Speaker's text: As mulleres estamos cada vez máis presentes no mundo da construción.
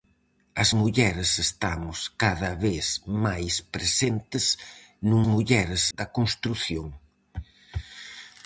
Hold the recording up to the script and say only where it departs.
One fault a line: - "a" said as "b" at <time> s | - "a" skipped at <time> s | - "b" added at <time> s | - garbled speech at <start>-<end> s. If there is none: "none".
- "mundo" said as "mulleres" at 5.3 s